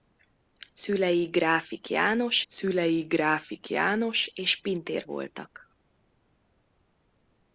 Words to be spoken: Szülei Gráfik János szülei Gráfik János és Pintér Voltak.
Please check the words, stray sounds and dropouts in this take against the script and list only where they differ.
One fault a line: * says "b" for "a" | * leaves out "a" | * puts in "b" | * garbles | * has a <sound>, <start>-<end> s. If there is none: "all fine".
all fine